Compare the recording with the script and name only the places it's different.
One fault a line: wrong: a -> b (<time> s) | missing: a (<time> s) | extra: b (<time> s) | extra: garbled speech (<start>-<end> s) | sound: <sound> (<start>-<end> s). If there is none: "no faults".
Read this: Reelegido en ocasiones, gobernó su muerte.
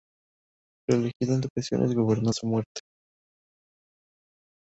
no faults